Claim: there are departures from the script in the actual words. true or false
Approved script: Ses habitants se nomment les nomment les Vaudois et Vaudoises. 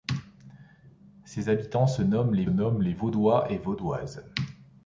false